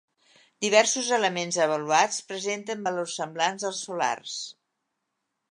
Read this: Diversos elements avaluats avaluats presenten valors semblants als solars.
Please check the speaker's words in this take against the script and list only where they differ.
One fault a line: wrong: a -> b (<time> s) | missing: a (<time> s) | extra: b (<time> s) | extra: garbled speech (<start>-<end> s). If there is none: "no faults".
missing: avaluats (2.2 s)